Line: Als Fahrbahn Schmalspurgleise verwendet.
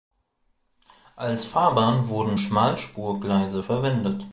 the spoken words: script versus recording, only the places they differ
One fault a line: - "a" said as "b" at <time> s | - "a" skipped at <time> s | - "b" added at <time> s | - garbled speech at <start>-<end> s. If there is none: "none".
- "wurden" added at 2.1 s